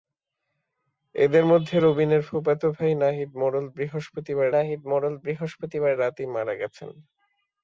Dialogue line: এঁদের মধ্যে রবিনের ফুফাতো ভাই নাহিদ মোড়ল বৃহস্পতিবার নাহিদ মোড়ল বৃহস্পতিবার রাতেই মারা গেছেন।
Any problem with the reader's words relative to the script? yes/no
no